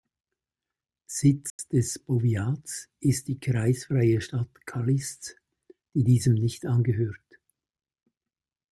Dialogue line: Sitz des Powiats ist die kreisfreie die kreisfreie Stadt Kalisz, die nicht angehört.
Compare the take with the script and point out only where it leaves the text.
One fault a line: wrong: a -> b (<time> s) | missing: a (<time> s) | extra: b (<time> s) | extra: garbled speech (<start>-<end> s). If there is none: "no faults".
missing: die kreisfreie (4.2 s)
extra: diesem (6.0 s)